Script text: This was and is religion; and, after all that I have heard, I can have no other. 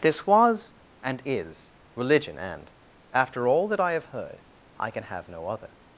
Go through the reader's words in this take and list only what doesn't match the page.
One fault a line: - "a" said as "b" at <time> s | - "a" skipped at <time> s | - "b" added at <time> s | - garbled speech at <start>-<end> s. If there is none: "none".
none